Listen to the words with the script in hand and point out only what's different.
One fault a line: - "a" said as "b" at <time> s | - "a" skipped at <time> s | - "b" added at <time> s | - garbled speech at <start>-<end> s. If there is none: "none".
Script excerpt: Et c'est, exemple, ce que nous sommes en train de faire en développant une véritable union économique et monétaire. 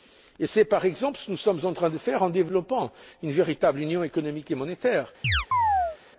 - "par" added at 0.7 s